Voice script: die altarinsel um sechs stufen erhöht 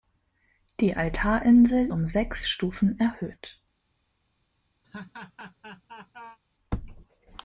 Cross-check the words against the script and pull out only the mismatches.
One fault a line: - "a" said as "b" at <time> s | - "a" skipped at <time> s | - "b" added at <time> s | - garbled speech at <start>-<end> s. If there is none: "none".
none